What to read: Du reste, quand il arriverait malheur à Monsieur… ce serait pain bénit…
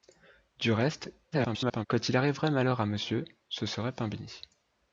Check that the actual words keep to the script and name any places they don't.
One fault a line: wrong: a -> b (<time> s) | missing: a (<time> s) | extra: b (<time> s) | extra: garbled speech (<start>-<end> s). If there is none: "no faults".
extra: garbled speech (1.3-1.9 s)